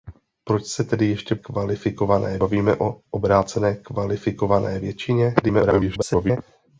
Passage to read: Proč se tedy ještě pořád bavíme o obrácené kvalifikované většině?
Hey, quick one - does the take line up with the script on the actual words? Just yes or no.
no